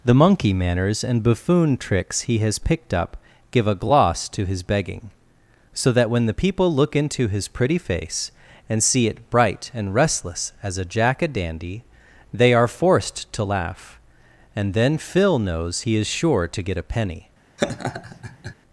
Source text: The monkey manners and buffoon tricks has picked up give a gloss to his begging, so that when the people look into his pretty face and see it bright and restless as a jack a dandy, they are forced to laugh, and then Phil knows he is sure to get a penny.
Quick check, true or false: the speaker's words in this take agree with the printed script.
false